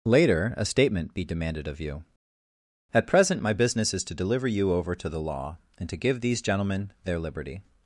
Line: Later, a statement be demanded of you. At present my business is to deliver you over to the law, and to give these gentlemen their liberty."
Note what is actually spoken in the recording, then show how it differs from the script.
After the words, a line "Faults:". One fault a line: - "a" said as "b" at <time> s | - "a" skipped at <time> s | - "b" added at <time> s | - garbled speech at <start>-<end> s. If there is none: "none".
Later, a statement be demanded of you. At present my business is to deliver you over to the law, and to give these gentlemen their liberty."
Faults:
none